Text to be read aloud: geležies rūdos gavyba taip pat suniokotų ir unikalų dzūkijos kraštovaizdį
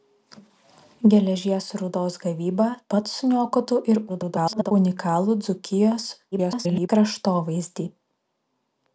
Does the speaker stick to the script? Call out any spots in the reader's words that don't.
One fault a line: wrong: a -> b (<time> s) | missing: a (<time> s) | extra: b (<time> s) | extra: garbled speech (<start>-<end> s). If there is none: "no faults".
missing: taip (2.7 s)
extra: garbled speech (4.1-4.7 s)
extra: garbled speech (6.3-6.9 s)